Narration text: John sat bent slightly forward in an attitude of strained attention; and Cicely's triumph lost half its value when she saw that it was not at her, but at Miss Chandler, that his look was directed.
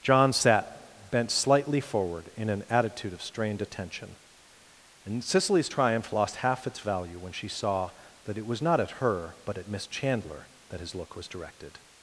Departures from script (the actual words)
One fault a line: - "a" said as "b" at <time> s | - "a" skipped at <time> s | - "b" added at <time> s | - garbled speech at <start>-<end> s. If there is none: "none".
none